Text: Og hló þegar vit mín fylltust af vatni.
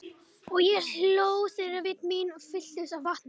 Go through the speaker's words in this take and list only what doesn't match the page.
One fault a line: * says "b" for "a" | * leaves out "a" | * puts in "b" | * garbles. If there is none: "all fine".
* puts in "ég"